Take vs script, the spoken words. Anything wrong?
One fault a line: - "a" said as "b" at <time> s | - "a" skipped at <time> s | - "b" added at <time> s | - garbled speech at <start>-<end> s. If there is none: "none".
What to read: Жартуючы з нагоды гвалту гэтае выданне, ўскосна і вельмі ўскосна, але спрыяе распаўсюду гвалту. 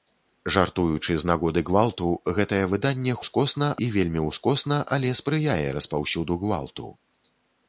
none